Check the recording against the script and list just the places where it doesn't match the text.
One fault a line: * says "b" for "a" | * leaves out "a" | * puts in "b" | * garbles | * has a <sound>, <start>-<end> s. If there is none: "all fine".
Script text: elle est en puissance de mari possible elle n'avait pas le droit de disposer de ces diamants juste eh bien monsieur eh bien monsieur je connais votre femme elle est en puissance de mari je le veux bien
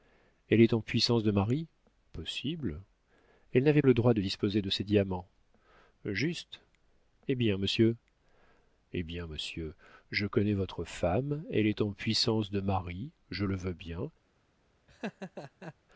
* leaves out "pas"
* has a laugh, 14.9-15.7 s